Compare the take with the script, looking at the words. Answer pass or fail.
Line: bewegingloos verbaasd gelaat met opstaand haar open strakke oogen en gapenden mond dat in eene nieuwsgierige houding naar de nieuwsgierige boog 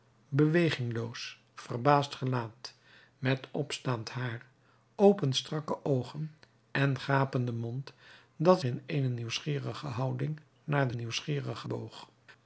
pass